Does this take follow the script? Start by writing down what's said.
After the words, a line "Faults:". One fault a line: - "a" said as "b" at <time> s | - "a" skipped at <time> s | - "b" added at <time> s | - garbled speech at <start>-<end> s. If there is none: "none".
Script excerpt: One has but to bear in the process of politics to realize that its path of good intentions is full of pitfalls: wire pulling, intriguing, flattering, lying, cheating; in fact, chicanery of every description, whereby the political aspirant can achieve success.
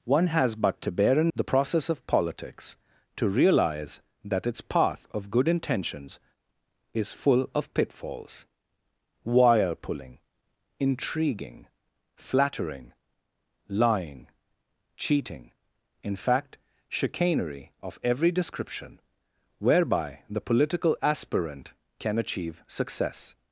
One has but to bear in the process of politics to realize that its path of good intentions is full of pitfalls: wire pulling, intriguing, flattering, lying, cheating; in fact, chicanery of every description, whereby the political aspirant can achieve success.
Faults:
none